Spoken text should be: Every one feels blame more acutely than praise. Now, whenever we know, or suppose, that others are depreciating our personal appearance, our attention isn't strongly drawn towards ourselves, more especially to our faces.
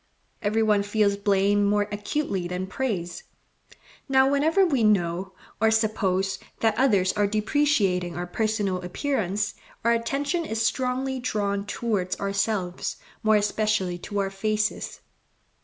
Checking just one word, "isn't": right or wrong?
wrong